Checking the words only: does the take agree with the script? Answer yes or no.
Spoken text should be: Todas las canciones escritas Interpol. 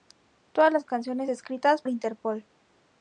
yes